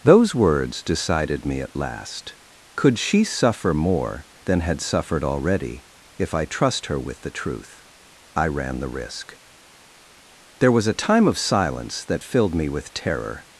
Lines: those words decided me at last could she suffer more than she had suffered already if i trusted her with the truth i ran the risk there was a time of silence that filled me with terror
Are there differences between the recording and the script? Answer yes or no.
yes